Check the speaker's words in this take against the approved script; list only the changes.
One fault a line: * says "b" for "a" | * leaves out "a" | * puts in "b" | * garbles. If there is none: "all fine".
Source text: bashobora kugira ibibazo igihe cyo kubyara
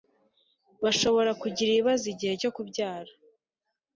all fine